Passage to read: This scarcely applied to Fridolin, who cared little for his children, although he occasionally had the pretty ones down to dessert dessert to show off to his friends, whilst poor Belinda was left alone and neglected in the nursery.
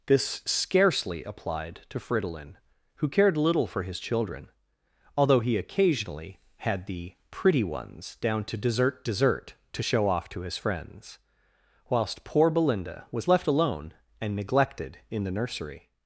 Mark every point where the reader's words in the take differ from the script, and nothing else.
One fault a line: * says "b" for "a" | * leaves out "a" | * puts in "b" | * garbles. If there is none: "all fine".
all fine